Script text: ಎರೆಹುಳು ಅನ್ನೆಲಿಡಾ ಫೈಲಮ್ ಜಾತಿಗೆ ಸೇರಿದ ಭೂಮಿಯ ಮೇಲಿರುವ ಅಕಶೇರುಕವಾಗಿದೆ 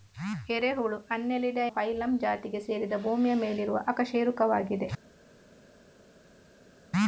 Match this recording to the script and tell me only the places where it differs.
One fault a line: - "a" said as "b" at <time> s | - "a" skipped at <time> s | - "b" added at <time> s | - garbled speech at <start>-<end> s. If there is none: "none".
none